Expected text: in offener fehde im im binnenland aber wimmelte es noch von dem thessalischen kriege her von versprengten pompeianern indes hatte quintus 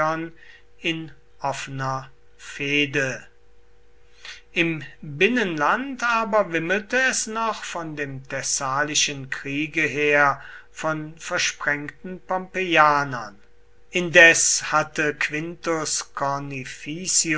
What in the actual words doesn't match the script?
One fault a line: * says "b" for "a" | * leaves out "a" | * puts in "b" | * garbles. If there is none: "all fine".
* leaves out "im"